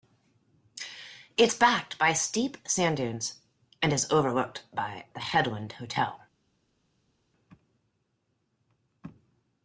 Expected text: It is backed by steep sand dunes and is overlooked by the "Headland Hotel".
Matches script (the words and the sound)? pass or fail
pass